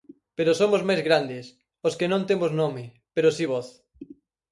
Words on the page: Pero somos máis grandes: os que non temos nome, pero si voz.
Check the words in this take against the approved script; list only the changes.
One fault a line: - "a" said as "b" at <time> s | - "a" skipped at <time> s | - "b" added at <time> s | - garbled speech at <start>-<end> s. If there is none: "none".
none